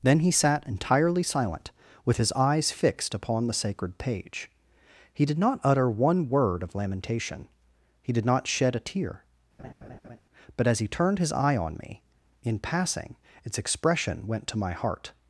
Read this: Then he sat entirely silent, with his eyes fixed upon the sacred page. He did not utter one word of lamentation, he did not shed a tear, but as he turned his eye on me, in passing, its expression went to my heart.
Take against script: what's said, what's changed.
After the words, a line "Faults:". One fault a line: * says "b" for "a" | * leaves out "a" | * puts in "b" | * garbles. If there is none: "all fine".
Then he sat entirely silent, with his eyes fixed upon the sacred page. He did not utter one word of lamentation, he did not shed a tear, but as he turned his eye on me, in passing, its expression went to my heart.
Faults:
all fine